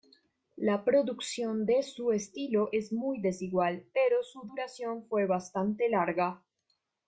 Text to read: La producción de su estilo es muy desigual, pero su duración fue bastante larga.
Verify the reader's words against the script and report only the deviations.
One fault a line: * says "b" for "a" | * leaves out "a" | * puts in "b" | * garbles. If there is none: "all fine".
all fine